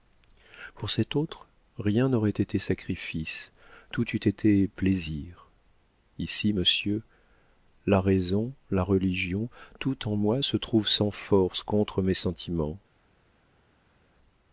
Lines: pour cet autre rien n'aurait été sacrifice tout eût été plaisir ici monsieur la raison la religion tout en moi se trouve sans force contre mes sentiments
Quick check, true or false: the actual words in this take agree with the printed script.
true